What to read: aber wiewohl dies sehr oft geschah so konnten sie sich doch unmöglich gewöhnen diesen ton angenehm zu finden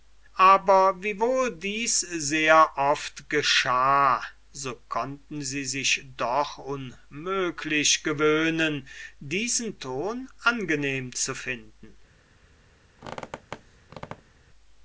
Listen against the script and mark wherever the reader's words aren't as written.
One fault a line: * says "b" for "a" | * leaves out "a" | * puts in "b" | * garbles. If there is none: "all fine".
all fine